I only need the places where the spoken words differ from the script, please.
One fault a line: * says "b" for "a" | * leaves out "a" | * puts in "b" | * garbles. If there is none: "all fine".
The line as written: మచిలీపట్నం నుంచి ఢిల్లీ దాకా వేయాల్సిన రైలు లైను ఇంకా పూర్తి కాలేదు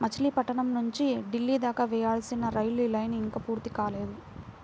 all fine